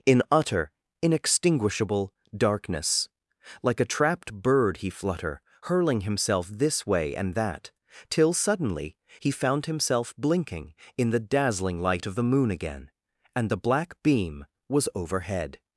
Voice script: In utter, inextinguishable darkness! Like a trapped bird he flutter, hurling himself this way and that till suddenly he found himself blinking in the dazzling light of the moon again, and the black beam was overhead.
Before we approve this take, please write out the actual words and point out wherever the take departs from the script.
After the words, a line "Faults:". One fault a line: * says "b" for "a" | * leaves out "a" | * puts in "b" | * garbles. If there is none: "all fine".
In utter, inextinguishable darkness! Like a trapped bird he flutter, hurling himself this way and that till suddenly he found himself blinking in the dazzling light of the moon again, and the black beam was overhead.
Faults:
all fine